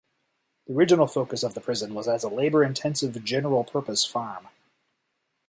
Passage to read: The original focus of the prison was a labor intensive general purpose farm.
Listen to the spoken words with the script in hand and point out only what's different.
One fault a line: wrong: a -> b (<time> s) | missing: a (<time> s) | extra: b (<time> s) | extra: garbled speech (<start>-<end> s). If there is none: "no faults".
extra: as (2.1 s)